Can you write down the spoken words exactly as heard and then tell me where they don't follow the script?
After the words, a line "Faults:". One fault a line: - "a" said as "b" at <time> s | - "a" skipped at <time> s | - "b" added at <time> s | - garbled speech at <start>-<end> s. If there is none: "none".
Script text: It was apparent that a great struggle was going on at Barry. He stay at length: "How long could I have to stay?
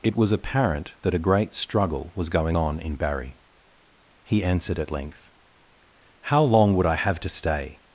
It was apparent that a great struggle was going on in Barry. He answered at length: "How long would I have to stay?
Faults:
- "at" said as "in" at 2.8 s
- "stay" said as "answered" at 4.4 s
- "could" said as "would" at 6.8 s